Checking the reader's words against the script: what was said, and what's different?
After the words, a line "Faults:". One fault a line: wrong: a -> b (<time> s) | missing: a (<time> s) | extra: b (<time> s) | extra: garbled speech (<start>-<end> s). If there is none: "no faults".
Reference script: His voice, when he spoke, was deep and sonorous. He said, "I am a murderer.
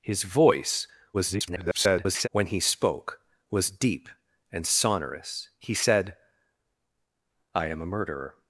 His voice, [garbled] when he spoke, was deep and sonorous. He said, "I am a murderer.
Faults:
extra: garbled speech (1.1-2.3 s)